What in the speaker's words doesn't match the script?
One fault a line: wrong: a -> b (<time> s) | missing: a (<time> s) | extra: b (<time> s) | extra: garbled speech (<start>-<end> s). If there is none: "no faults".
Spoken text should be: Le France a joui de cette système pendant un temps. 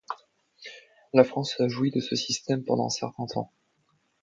wrong: Le -> La (1.1 s)
wrong: cette -> ce (2.0 s)
extra: certain (2.9 s)